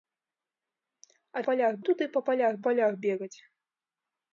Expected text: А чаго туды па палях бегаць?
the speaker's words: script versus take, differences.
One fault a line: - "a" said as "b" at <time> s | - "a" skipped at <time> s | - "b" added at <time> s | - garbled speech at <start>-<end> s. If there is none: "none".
- "чаго" said as "палях" at 1.5 s
- "палях" added at 2.7 s